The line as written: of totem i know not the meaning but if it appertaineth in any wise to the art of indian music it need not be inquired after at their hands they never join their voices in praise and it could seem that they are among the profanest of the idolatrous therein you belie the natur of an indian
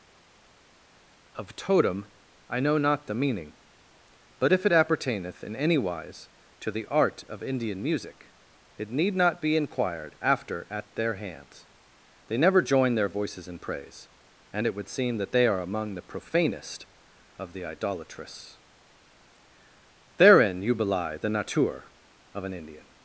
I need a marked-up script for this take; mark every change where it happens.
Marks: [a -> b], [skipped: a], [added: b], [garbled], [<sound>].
of totem i know not the meaning but if it appertaineth in any wise to the art of indian music it need not be inquired after at their hands they never join their voices in praise and it [could -> would] seem that they are among the profanest of the idolatrous therein you belie the natur of an indian